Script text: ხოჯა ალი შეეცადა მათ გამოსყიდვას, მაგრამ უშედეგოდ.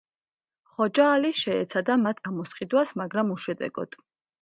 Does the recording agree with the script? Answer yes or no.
yes